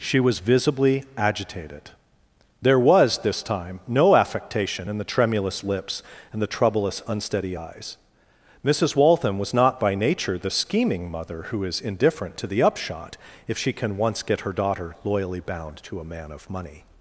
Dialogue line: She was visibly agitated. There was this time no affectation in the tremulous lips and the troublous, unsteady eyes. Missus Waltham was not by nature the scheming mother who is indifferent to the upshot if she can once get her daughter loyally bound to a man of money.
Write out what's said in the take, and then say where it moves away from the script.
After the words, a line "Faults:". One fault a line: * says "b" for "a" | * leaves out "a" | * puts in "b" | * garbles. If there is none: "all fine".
She was visibly agitated. There was this time no affectation in the tremulous lips and the troublous, unsteady eyes. Missus Waltham was not by nature the scheming mother who is indifferent to the upshot if she can once get her daughter loyally bound to a man of money.
Faults:
all fine